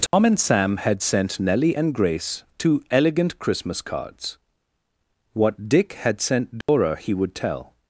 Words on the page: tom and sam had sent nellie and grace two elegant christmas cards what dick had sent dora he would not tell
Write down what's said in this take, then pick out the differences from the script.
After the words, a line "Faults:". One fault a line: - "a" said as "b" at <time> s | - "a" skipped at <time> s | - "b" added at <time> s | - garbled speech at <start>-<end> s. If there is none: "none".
tom and sam had sent nellie and grace two elegant christmas cards what dick had sent dora he would tell
Faults:
- "not" skipped at 7.3 s